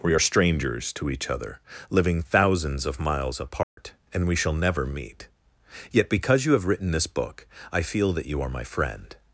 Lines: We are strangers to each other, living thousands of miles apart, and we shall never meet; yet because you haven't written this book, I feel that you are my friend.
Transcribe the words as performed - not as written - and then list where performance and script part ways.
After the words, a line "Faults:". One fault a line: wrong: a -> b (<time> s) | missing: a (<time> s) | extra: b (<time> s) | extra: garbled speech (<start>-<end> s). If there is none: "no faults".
We are strangers to each other, living thousands of miles apart, and we shall never meet; yet because you have written this book, I feel that you are my friend.
Faults:
wrong: haven't -> have (6.5 s)